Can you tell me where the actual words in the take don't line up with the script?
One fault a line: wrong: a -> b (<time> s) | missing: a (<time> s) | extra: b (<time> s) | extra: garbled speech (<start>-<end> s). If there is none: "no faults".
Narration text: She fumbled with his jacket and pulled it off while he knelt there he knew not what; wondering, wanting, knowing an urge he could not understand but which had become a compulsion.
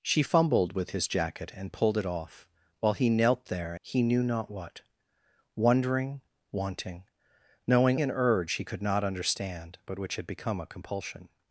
no faults